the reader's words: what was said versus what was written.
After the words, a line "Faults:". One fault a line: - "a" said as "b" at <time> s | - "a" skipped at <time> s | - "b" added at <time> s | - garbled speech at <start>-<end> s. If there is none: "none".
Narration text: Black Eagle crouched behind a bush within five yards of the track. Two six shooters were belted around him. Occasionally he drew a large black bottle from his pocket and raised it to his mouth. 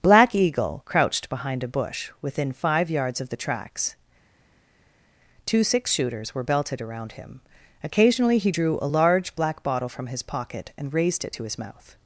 Black Eagle crouched behind a bush within five yards of the tracks. Two six shooters were belted around him. Occasionally he drew a large black bottle from his pocket and raised it to his mouth.
Faults:
- "track" said as "tracks" at 3.4 s